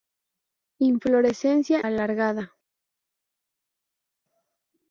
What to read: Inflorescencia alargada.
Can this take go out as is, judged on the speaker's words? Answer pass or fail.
pass